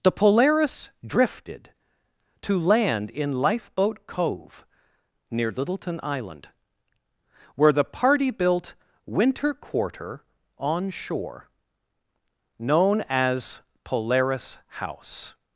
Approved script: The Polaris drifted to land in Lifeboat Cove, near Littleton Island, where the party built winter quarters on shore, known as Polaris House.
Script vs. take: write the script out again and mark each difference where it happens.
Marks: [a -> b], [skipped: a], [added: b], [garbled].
The Polaris drifted to land in Lifeboat Cove, near Littleton Island, where the party built winter [quarters -> quarter] on shore, known as Polaris House.